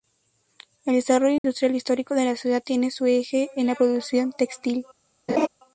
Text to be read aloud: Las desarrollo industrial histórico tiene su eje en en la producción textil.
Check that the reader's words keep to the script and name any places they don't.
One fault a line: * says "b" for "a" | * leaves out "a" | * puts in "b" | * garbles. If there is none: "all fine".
* says "El" for "Las"
* puts in "de la ciudad"
* leaves out "en"